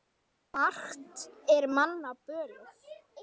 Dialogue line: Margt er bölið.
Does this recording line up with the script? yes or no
no